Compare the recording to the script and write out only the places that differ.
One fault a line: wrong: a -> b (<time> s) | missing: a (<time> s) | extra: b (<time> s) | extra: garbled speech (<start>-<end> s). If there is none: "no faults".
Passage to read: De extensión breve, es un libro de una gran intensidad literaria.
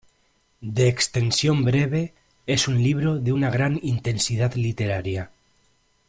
no faults